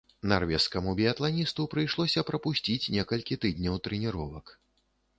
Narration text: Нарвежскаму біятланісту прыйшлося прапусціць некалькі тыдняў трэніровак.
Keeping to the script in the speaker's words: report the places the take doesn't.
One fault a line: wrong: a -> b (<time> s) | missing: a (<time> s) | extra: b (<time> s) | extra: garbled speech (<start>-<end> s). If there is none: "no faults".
no faults